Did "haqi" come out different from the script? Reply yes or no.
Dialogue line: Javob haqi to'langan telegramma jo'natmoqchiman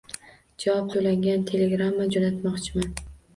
yes